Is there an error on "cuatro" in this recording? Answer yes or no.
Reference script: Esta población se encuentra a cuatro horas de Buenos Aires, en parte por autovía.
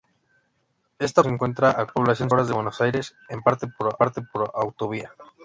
yes